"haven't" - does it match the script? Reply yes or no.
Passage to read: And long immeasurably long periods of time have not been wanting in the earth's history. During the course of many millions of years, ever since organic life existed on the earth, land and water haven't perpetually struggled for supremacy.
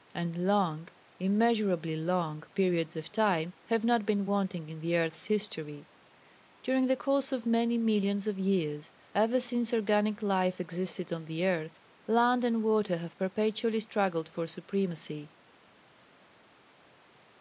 no